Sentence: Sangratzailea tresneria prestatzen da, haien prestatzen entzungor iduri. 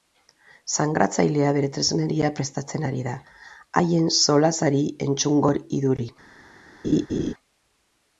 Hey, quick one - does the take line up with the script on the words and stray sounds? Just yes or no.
no